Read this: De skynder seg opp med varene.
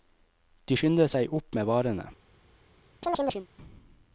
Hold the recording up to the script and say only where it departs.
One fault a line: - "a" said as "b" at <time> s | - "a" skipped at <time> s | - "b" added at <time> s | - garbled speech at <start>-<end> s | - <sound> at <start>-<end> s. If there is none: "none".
- chirp at 3.0-3.5 s